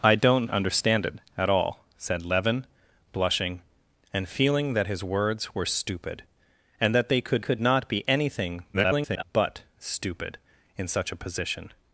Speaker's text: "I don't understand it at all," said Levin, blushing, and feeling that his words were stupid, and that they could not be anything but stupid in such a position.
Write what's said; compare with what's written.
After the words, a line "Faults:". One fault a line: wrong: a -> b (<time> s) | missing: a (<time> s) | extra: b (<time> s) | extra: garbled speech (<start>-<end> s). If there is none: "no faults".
"I don't understand it at all," said Levin, blushing, and feeling that his words were stupid, and that they could could not be anything [garbled] but stupid in such a position.
Faults:
extra: could (7.4 s)
extra: garbled speech (8.7-9.2 s)